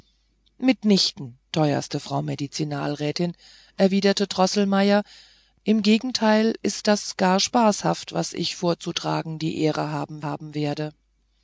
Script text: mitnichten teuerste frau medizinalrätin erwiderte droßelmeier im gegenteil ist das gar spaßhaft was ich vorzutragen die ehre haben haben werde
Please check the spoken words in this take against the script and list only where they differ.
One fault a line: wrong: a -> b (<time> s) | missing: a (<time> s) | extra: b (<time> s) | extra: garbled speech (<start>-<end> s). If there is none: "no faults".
no faults